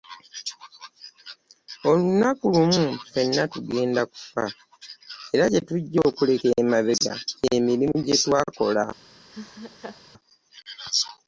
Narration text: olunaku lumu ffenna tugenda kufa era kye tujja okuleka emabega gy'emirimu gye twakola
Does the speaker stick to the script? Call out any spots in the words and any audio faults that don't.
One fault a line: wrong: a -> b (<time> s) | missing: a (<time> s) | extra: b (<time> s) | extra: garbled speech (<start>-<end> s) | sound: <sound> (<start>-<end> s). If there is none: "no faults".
sound: laugh (9.3-10.0 s)